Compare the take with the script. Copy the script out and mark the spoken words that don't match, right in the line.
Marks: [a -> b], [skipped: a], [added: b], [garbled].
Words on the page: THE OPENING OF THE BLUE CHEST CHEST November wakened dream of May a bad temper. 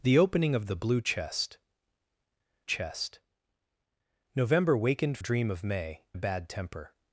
THE OPENING OF THE BLUE CHEST CHEST November wakened dream of May a bad temper.